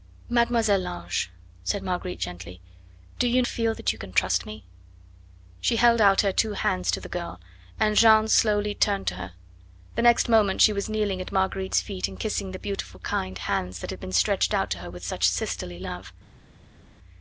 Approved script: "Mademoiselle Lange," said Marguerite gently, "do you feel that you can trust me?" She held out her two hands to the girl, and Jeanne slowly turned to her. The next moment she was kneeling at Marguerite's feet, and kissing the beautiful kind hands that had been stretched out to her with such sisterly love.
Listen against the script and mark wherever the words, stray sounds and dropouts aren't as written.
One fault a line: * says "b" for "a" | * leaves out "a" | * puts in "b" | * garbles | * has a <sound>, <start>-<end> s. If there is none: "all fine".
all fine